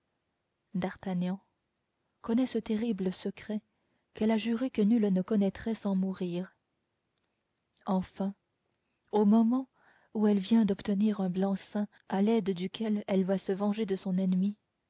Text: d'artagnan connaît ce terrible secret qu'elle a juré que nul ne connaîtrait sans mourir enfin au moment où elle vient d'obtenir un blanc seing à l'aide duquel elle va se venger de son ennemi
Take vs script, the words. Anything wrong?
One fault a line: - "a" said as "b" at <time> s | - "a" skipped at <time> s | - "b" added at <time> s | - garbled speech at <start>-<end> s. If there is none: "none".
none